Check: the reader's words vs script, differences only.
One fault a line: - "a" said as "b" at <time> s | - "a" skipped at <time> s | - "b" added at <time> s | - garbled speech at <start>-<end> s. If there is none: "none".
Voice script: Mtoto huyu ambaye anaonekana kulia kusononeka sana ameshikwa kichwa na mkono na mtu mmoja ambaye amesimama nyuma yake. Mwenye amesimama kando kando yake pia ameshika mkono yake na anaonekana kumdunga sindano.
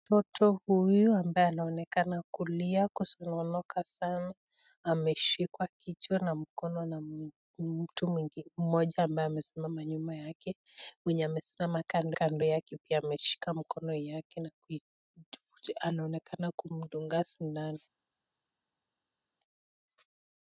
none